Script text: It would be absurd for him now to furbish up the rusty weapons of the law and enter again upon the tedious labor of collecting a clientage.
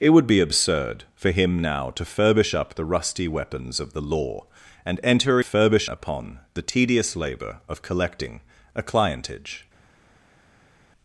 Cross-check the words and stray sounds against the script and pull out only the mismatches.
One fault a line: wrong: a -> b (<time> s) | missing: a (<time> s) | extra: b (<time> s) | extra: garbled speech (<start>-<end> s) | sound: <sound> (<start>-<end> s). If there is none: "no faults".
wrong: again -> furbish (5.4 s)